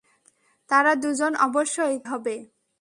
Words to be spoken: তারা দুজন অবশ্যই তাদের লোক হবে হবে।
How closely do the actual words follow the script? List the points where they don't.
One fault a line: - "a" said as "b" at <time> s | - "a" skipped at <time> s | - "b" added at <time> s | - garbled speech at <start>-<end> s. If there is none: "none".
- "তাদের লোক হবে" skipped at 1.9 s